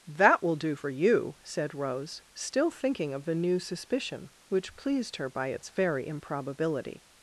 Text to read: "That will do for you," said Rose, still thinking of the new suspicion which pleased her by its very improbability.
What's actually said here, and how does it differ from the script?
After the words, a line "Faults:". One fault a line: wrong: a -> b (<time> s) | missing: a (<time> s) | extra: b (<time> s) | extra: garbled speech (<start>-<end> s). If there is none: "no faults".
"That will do for you," said Rose, still thinking of the new suspicion which pleased her by its very improbability.
Faults:
no faults